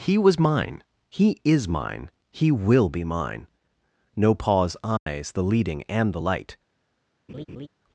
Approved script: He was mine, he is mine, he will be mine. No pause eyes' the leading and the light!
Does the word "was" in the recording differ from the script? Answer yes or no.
no